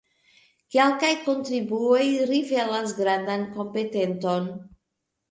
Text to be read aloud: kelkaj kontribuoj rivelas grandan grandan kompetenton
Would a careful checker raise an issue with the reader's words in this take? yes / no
yes